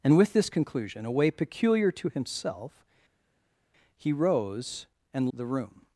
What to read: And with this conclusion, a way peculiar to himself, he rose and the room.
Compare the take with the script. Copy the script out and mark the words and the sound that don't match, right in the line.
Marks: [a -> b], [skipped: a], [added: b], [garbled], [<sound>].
And with this conclusion, a way peculiar to himself, he rose and the room.